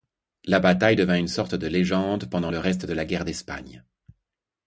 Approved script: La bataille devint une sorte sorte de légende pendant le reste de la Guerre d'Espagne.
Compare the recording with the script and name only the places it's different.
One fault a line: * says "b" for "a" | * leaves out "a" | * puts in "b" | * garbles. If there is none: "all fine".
* leaves out "sorte"